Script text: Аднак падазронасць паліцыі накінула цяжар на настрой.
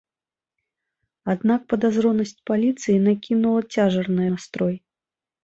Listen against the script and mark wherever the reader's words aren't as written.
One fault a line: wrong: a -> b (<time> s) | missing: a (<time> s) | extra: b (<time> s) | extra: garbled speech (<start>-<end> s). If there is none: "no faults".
no faults